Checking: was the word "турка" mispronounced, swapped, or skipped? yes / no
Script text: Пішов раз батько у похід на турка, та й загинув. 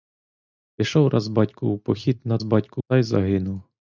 yes